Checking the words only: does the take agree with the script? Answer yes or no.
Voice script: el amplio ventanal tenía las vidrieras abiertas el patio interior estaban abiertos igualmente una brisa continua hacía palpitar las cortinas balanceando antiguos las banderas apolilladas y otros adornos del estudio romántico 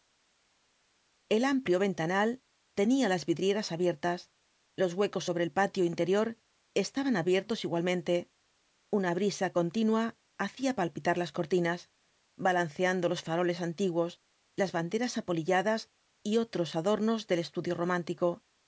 no